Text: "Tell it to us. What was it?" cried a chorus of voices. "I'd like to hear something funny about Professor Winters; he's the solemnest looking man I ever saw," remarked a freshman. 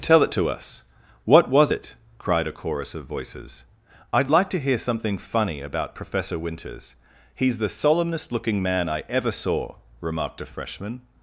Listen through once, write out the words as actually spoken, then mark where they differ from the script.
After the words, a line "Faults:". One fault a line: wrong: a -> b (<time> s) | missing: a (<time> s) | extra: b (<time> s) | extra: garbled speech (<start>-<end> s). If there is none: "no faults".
"Tell it to us. What was it?" cried a chorus of voices. "I'd like to hear something funny about Professor Winters; he's the solemnest looking man I ever saw," remarked a freshman.
Faults:
no faults